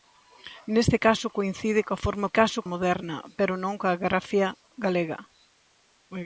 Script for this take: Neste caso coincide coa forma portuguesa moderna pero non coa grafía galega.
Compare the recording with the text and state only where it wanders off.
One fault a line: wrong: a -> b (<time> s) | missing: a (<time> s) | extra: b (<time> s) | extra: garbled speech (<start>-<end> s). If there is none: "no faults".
wrong: portuguesa -> caso (2.4 s)